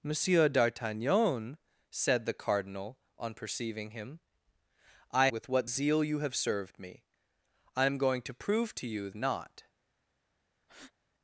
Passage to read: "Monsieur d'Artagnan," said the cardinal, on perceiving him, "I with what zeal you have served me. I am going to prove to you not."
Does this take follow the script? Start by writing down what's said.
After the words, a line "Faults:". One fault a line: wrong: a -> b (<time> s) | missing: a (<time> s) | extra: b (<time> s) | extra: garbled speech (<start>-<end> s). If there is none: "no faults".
"Monsieur d'Artagnan," said the cardinal, on perceiving him, "I with what zeal you have served me. I am going to prove to you not."
Faults:
no faults